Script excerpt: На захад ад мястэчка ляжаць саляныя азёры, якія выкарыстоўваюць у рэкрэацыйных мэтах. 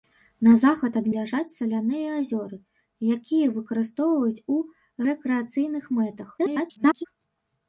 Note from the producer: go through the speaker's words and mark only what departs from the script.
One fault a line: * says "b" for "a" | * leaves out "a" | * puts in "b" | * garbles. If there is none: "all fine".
* leaves out "мястэчка"
* garbles